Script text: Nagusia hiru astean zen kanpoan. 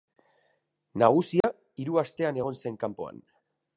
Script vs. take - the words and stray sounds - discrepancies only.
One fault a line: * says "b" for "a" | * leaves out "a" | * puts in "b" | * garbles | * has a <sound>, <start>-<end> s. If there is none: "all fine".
* has a dropout, 1.4-1.4 s
* puts in "egon"